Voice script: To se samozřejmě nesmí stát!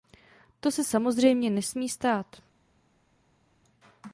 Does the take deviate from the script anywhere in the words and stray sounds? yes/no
no